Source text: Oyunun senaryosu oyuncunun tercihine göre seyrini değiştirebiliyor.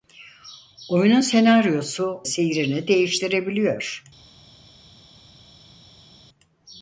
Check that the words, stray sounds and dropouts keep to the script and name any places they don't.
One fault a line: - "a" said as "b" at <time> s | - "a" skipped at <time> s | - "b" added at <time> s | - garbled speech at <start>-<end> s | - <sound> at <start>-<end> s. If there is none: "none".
- "oyuncunun tercihine göre" skipped at 2.2 s